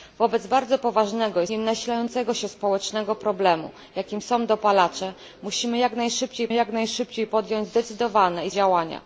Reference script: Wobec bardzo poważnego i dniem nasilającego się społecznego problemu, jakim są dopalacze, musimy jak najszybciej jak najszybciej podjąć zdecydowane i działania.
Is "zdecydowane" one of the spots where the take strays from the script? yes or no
no